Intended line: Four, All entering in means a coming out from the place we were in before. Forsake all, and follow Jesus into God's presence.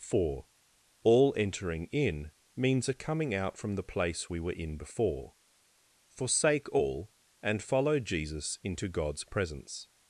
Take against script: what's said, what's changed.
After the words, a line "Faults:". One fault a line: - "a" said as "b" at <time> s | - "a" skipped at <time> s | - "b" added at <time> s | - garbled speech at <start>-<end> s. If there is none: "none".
Four, All entering in means a coming out from the place we were in before. Forsake all, and follow Jesus into God's presence.
Faults:
none